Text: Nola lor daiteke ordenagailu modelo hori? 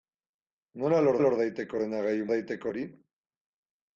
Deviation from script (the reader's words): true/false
true